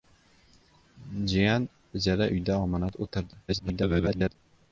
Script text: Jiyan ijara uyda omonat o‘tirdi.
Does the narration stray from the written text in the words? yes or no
yes